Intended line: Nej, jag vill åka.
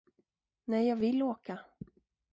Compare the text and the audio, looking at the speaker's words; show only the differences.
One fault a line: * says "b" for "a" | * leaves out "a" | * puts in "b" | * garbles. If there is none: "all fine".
all fine